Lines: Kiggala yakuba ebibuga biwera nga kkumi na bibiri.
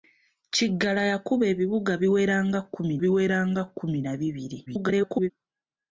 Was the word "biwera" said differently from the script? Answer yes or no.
no